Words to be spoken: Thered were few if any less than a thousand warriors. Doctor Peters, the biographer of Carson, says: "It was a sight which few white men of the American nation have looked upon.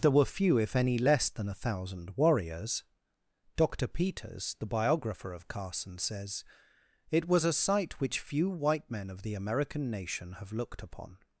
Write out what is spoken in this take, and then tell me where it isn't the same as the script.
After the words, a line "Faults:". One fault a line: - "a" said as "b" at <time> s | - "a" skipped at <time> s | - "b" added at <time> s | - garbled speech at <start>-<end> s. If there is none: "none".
There were few if any less than a thousand warriors. Doctor Peters, the biographer of Carson, says: "It was a sight which few white men of the American nation have looked upon.
Faults:
- "Thered" said as "There" at 0.0 s